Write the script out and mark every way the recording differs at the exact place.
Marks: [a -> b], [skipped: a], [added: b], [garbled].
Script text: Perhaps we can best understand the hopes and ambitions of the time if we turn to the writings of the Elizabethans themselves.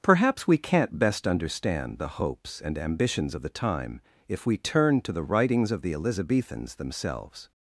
Perhaps we [can -> can't] best understand the hopes and ambitions of the time if we turn to the writings of the Elizabethans themselves.